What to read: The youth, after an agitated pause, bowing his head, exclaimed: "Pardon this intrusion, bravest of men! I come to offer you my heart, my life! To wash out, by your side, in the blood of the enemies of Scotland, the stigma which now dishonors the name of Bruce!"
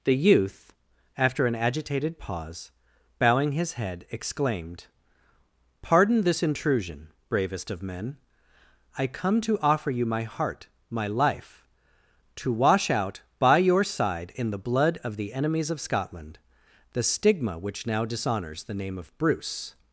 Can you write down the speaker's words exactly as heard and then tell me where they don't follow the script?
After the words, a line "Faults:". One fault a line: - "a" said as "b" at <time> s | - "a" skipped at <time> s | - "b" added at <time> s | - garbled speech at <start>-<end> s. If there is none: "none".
The youth, after an agitated pause, bowing his head, exclaimed: "Pardon this intrusion, bravest of men! I come to offer you my heart, my life! To wash out, by your side, in the blood of the enemies of Scotland, the stigma which now dishonors the name of Bruce!"
Faults:
none